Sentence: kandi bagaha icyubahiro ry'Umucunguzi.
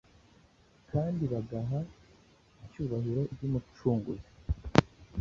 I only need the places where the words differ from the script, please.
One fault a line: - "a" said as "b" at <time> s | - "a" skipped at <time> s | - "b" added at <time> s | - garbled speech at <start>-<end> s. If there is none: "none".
none